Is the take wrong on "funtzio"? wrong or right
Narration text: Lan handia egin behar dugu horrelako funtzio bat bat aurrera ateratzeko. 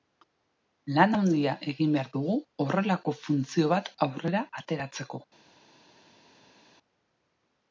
right